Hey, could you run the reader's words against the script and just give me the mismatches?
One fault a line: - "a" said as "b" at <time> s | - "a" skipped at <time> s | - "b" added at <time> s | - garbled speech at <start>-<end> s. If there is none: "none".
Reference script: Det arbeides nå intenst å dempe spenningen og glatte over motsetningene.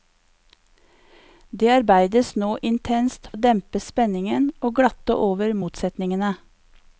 none